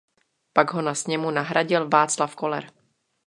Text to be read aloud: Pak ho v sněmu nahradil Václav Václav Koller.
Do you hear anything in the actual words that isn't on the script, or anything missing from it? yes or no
yes